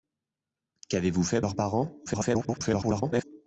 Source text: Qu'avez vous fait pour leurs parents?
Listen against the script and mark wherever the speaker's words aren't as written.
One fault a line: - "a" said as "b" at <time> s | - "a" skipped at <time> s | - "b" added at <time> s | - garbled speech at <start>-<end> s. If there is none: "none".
- "pour" skipped at 1.4 s
- garbled speech at 2.1-3.2 s